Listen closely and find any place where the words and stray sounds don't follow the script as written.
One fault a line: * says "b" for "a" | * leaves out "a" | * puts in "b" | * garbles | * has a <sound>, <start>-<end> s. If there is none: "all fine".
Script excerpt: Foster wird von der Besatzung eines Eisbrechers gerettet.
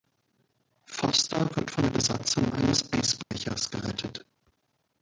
* has a dropout, 3.2-3.3 s